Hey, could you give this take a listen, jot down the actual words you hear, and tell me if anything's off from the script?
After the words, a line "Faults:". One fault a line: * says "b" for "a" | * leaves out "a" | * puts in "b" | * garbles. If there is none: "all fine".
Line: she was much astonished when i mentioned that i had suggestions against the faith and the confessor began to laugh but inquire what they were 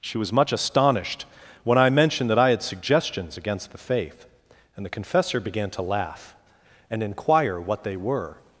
she was much astonished when i mentioned that i had suggestions against the faith and the confessor began to laugh and inquire what they were
Faults:
* says "and" for "but"